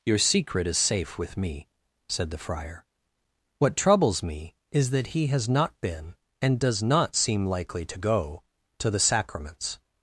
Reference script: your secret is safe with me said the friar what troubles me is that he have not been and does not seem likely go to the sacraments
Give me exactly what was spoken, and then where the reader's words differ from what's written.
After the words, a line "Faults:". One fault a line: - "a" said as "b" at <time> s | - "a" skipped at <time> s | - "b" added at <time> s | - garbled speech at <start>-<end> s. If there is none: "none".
your secret is safe with me said the friar what troubles me is that he has not been and does not seem likely to go to the sacraments
Faults:
- "have" said as "has" at 5.3 s
- "to" added at 7.8 s